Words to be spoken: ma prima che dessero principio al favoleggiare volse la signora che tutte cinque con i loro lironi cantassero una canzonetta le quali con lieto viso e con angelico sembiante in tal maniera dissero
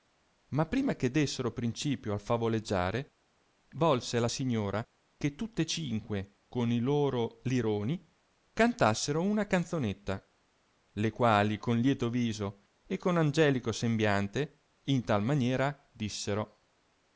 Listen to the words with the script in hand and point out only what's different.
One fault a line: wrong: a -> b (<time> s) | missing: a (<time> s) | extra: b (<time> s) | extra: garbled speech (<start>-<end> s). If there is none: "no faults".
no faults